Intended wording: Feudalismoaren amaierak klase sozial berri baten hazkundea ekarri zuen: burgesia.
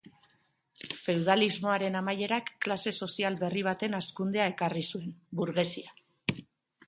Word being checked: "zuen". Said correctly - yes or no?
yes